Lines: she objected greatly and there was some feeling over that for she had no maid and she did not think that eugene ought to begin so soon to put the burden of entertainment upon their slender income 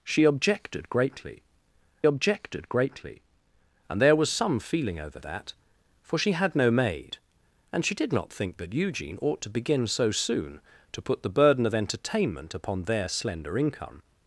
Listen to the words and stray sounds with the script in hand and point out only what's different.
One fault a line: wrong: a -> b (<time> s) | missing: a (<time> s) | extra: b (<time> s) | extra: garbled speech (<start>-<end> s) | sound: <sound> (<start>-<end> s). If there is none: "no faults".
extra: objected greatly (2.0 s)